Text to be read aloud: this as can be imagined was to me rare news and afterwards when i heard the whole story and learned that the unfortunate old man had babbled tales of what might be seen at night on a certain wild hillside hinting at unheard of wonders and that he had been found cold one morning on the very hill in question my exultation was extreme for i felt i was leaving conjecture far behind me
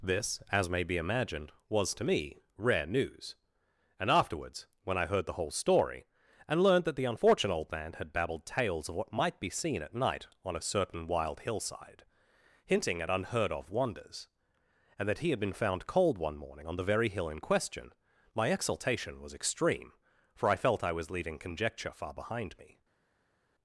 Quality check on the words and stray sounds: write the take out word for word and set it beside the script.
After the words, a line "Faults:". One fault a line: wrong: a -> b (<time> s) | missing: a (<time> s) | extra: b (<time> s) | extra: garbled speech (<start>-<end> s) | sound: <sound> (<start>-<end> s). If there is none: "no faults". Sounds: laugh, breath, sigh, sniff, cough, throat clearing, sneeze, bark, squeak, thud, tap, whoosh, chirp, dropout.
this as may be imagined was to me rare news and afterwards when i heard the whole story and learned that the unfortunate old man had babbled tales of what might be seen at night on a certain wild hillside hinting at unheard of wonders and that he had been found cold one morning on the very hill in question my exultation was extreme for i felt i was leaving conjecture far behind me
Faults:
wrong: can -> may (0.7 s)